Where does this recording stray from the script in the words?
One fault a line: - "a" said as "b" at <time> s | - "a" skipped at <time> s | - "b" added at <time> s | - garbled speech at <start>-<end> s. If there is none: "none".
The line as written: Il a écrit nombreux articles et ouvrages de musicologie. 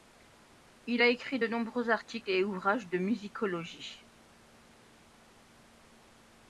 - "de" added at 1.4 s